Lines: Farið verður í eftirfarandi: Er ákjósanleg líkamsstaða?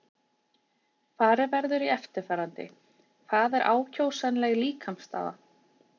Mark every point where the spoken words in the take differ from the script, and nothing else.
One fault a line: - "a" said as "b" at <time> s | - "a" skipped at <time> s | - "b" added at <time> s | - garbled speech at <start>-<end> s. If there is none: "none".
- "Hvað" added at 3.3 s